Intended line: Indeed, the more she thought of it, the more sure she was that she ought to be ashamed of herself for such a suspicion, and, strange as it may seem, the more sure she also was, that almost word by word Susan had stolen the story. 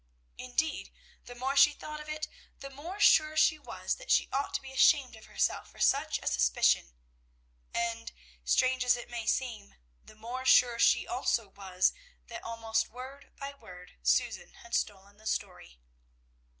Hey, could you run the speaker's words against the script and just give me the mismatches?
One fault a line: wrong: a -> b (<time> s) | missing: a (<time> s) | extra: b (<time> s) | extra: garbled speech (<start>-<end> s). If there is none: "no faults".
no faults